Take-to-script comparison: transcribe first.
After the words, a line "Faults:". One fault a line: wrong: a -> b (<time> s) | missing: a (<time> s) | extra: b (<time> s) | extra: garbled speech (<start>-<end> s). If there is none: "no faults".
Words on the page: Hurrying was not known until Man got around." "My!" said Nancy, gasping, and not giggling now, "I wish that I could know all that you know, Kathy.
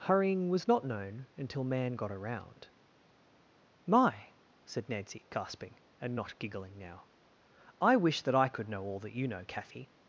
Hurrying was not known until Man got around." "My!" said Nancy, gasping, and not giggling now, "I wish that I could know all that you know, Kathy.
Faults:
no faults